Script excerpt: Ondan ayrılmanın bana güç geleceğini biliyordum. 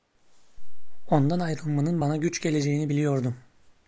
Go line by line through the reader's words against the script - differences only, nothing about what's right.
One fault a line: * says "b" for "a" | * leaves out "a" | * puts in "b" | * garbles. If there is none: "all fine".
all fine